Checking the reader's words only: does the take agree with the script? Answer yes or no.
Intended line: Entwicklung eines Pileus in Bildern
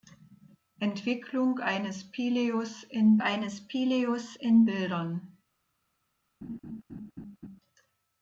no